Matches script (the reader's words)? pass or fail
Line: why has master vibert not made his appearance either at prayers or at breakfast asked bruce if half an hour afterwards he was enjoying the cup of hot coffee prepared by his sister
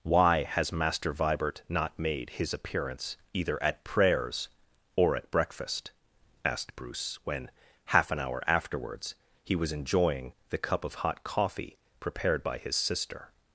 fail